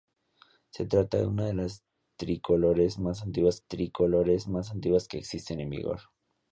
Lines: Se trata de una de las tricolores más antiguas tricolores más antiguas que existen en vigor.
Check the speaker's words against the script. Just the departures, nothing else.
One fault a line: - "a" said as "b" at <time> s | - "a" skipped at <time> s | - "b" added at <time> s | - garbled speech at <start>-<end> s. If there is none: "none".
none